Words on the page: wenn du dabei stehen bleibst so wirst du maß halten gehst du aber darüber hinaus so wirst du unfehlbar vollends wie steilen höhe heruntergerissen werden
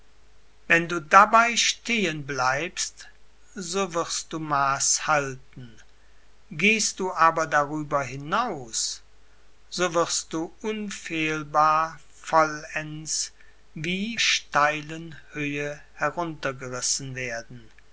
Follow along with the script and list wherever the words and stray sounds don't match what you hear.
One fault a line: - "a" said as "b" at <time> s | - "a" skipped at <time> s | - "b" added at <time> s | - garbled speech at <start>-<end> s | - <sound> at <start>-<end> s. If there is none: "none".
none